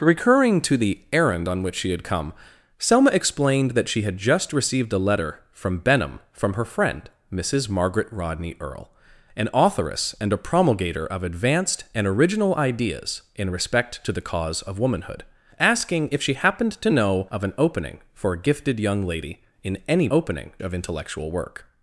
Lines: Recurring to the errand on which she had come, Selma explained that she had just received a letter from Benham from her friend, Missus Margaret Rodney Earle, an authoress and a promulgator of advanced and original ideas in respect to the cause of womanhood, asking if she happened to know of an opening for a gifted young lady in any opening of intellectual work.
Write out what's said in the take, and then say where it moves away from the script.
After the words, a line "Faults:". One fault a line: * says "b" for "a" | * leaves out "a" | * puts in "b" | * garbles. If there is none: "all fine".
Recurring to the errand on which she had come, Selma explained that she had just received a letter from Benham from her friend, Missus Margaret Rodney Earle, an authoress and a promulgator of advanced and original ideas in respect to the cause of womanhood, asking if she happened to know of an opening for a gifted young lady in any opening of intellectual work.
Faults:
all fine